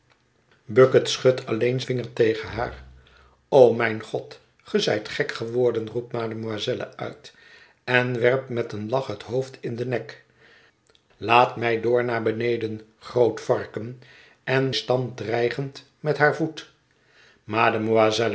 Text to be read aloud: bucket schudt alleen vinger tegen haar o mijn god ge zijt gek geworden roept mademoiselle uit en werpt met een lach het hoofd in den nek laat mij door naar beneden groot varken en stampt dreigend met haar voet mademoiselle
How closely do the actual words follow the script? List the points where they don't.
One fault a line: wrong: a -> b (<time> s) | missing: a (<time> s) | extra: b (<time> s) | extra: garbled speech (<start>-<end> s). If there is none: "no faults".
no faults